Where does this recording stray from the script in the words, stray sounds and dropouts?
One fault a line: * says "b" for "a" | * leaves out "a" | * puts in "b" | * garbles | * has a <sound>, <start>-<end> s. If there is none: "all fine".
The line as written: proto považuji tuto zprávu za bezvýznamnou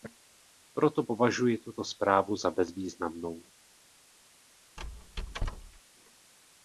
* has a squeak, 4.8-5.8 s